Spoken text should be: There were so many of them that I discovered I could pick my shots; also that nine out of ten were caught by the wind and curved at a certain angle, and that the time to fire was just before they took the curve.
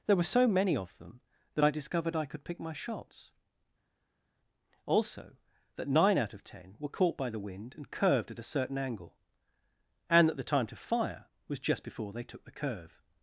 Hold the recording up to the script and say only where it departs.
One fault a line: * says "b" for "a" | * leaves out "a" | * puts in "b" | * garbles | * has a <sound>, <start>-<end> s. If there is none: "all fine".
all fine